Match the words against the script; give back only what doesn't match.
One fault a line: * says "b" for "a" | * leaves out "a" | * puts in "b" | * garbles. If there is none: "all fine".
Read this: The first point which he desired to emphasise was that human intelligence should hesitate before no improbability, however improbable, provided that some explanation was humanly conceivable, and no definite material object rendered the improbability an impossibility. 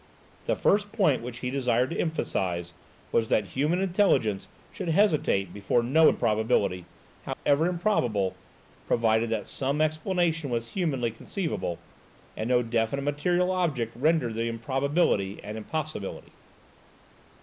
all fine